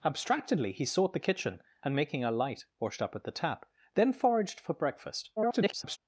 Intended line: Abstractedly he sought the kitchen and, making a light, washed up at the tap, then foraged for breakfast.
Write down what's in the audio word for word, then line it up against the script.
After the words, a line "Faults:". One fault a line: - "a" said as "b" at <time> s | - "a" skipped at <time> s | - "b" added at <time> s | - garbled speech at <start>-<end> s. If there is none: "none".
Abstractedly he sought the kitchen and, making a light, washed up at the tap, then foraged for breakfast. [garbled]
Faults:
- garbled speech at 5.4-6.0 s